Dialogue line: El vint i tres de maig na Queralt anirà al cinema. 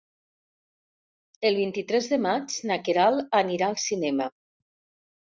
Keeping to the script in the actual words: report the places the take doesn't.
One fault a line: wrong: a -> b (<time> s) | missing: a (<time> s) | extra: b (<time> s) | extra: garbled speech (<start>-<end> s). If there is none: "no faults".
no faults